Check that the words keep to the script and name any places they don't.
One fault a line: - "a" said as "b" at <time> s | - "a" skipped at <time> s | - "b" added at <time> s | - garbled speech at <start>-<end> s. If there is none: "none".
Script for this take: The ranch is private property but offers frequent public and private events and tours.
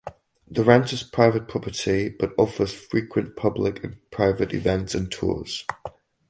none